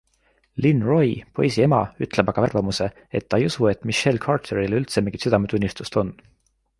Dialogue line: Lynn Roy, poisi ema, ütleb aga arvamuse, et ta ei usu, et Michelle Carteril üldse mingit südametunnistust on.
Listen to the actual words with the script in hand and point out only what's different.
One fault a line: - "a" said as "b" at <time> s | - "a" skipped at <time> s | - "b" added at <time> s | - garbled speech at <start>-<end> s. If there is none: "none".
none